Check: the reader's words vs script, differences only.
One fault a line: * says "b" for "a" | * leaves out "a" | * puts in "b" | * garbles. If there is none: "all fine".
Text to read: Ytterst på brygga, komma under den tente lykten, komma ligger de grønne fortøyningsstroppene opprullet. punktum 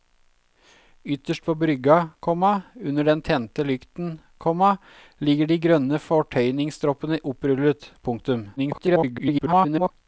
* garbles